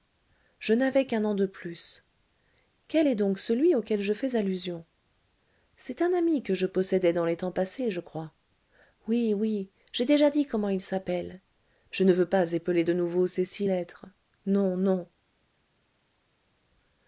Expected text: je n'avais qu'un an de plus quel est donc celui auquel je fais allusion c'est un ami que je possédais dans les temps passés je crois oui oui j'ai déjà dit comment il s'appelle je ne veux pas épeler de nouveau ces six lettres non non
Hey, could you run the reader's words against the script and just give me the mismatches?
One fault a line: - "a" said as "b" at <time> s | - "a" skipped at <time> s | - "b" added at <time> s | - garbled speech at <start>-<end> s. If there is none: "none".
none